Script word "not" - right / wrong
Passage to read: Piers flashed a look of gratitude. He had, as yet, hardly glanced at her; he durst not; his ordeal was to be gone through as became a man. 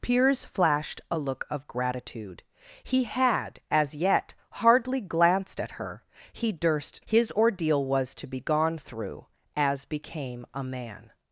wrong